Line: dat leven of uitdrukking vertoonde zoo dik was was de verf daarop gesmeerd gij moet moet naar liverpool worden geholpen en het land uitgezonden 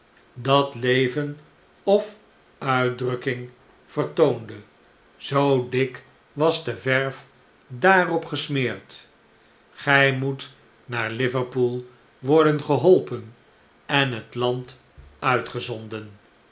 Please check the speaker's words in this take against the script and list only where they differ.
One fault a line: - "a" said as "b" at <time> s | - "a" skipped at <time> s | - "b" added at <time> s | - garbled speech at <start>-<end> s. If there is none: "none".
- "was" skipped at 6.6 s
- "moet" skipped at 10.5 s